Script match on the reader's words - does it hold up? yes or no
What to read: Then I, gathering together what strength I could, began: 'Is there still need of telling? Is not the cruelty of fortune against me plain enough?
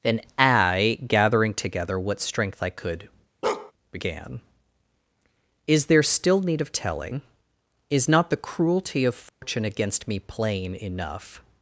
yes